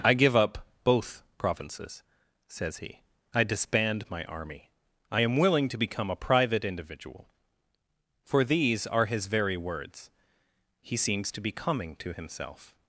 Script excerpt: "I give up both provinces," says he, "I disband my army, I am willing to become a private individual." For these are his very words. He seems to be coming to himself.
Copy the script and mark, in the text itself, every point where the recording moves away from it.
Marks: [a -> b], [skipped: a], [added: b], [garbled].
"I give up both provinces," says he, "I disband my army, I am willing to become a private individual." For these are his very words. He seems to be coming to himself.